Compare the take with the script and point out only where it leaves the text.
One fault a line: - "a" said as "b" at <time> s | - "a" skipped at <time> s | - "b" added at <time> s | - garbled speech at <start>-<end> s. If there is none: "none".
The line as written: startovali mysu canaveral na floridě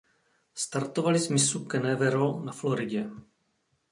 - "z" added at 1.2 s